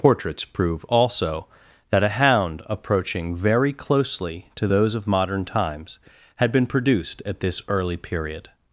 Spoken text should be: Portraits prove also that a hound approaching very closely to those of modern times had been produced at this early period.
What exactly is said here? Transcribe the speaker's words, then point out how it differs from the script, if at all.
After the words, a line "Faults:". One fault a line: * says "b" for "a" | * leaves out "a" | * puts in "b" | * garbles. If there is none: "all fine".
Portraits prove also that a hound approaching very closely to those of modern times had been produced at this early period.
Faults:
all fine